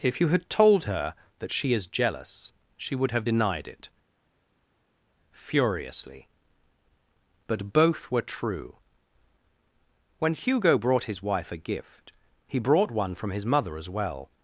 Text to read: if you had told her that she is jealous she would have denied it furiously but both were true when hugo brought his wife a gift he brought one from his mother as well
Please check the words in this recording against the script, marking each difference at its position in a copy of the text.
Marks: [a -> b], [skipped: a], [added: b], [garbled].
if you had told her that she is jealous she would have denied it furiously but both were true when hugo brought his wife a gift he brought one from his mother as well